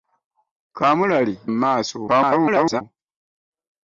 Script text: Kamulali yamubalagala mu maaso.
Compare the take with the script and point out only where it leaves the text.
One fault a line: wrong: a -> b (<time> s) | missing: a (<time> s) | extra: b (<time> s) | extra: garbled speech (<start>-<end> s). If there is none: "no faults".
missing: yamubalagala (1.4 s)
extra: garbled speech (2.1-2.8 s)